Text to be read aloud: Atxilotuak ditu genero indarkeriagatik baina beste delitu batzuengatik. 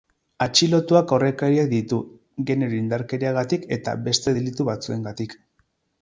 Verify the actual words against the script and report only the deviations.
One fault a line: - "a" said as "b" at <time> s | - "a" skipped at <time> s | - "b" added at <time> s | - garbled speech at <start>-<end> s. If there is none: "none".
- "aurrekariak" added at 1.2 s
- "baina" said as "eta" at 3.8 s